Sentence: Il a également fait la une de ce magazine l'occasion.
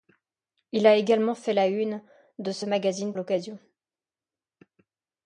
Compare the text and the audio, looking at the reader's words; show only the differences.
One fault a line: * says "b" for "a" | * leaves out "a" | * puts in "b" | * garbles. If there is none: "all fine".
all fine